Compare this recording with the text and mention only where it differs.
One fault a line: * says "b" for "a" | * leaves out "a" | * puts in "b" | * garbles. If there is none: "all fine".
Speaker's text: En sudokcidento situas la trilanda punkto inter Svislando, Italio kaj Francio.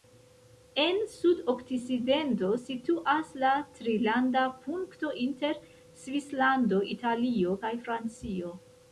all fine